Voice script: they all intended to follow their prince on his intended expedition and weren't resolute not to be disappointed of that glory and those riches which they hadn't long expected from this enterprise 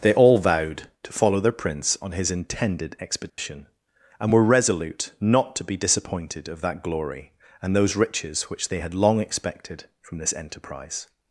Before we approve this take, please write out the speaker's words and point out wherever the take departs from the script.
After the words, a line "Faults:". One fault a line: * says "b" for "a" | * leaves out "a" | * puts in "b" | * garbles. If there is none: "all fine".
they all vowed to follow their prince on his intended expedition and were resolute not to be disappointed of that glory and those riches which they had long expected from this enterprise
Faults:
* says "vowed" for "intended"
* says "were" for "weren't"
* says "had" for "hadn't"